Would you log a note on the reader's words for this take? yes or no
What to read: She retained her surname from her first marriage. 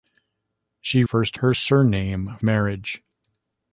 yes